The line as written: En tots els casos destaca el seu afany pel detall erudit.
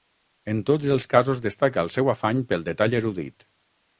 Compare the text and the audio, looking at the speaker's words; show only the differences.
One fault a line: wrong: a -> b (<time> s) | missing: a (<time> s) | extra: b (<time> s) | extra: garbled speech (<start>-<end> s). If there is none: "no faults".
no faults